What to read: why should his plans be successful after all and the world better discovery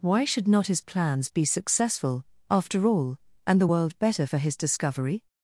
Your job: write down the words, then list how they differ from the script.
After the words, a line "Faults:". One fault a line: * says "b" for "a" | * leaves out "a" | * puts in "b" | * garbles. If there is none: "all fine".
why should not his plans be successful after all and the world better for his discovery
Faults:
* puts in "not"
* puts in "for his"